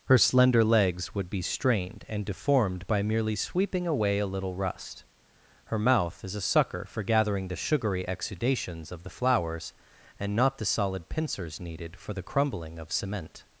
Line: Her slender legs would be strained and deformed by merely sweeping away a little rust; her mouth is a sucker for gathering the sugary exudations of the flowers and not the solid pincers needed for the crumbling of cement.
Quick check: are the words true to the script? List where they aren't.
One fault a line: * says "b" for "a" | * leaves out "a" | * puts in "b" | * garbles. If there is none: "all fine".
all fine